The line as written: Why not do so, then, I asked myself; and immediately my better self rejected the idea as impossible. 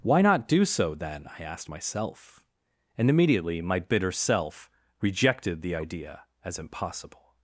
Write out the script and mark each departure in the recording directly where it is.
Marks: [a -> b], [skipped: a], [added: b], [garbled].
Why not do so, then, I asked myself; and immediately my [better -> bitter] self rejected the idea as impossible.